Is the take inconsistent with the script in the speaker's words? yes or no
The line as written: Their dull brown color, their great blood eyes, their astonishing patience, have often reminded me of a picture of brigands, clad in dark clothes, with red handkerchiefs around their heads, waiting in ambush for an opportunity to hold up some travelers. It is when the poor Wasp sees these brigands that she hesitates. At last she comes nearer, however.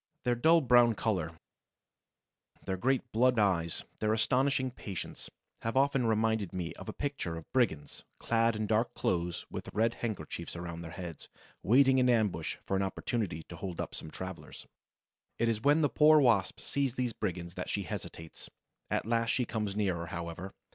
no